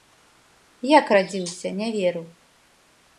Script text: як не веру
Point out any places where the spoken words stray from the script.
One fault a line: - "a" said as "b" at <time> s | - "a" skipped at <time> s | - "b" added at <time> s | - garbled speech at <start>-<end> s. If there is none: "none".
- "радзіўся" added at 1.1 s